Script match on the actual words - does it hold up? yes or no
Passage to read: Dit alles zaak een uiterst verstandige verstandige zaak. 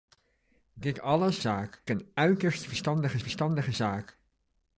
yes